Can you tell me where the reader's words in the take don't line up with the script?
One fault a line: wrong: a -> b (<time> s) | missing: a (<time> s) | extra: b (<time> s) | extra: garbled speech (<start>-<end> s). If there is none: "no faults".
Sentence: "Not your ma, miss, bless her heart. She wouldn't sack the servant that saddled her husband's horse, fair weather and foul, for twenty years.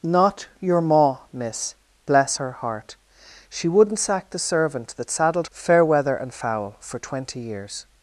missing: her husband's horse (5.5 s)